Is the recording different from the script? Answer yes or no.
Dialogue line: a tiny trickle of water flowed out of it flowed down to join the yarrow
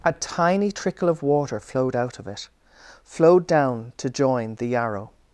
no